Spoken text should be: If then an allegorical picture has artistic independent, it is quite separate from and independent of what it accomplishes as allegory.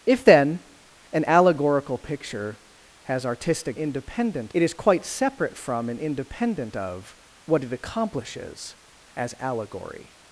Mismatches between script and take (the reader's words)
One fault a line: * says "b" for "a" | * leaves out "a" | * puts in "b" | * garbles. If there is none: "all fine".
all fine